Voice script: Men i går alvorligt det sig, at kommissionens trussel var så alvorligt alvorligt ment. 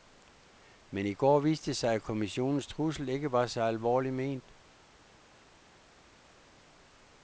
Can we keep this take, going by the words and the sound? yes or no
no